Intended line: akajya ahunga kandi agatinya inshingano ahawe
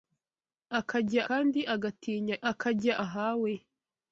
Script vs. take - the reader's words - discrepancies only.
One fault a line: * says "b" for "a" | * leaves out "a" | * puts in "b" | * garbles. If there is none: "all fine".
* leaves out "ahunga"
* says "akajya" for "inshingano"